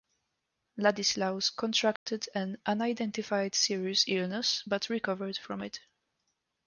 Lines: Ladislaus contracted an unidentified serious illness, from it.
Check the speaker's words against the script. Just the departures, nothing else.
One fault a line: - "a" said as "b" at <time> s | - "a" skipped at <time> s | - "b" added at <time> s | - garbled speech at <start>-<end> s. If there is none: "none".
- "but recovered" added at 4.6 s